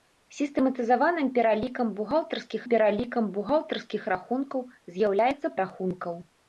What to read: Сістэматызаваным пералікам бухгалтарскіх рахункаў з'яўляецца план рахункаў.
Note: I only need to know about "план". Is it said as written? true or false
false